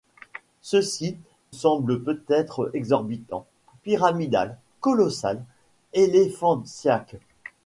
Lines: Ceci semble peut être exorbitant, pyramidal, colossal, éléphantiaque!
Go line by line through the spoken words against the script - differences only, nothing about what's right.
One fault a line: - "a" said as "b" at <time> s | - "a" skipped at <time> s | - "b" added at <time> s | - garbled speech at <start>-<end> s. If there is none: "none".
none